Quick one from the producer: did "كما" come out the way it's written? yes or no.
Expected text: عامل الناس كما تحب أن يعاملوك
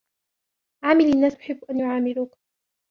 no